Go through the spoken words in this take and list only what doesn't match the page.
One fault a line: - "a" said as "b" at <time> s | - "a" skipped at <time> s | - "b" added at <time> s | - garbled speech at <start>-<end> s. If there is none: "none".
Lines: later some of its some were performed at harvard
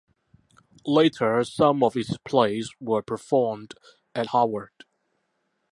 - "some" said as "plays" at 2.2 s